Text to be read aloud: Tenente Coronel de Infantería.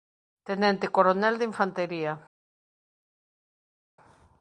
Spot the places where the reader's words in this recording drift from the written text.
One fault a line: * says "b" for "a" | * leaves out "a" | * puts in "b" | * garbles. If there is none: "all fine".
all fine